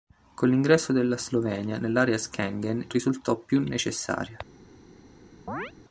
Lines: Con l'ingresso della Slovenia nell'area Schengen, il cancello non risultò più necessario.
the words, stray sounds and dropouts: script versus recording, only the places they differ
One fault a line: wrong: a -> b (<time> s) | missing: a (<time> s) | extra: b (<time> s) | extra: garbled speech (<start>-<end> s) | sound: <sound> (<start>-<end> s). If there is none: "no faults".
missing: il cancello non (2.8 s)
sound: chirp (5.5-5.7 s)